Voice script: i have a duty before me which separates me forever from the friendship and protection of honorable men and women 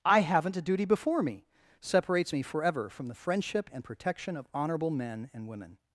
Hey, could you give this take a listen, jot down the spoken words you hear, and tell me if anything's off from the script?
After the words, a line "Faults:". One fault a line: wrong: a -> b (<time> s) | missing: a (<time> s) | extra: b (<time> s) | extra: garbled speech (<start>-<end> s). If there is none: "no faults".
i haven't a duty before me separates me forever from the friendship and protection of honorable men and women
Faults:
wrong: have -> haven't (0.2 s)
missing: which (1.4 s)